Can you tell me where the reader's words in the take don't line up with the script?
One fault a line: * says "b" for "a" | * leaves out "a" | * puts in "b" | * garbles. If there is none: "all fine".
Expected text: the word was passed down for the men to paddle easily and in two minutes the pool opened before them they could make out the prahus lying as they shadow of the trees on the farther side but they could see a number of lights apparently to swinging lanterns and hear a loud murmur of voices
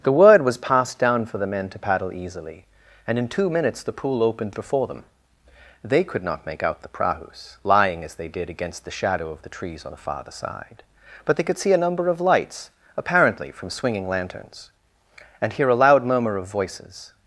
* puts in "not"
* puts in "did against the"
* says "from" for "to"